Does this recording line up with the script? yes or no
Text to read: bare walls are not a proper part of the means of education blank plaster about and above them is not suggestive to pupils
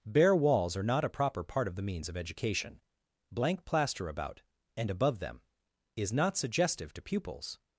yes